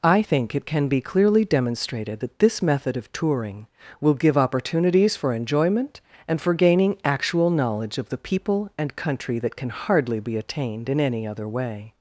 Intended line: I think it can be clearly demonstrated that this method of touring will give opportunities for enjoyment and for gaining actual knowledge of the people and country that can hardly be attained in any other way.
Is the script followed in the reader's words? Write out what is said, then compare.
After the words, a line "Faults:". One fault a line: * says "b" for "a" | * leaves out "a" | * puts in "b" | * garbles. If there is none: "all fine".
I think it can be clearly demonstrated that this method of touring will give opportunities for enjoyment and for gaining actual knowledge of the people and country that can hardly be attained in any other way.
Faults:
all fine